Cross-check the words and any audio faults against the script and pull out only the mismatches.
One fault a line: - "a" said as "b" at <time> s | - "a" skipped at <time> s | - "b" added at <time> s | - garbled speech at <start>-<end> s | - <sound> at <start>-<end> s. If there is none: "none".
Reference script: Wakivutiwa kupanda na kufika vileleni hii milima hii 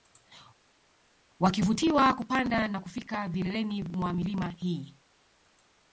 - "hii" said as "mwa" at 3.8 s